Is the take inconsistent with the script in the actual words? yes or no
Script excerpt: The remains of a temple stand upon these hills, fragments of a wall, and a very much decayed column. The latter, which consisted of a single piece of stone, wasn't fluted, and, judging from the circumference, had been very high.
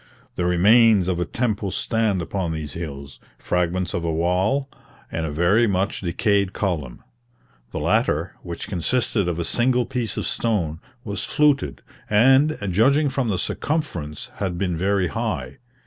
yes